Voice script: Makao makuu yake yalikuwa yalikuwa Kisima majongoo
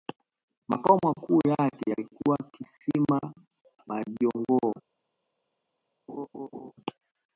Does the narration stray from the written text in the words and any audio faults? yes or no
yes